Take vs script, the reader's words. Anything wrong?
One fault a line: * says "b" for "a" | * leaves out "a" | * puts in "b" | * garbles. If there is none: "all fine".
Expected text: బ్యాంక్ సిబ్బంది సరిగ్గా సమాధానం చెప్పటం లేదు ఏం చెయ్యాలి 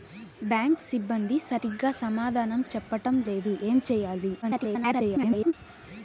* garbles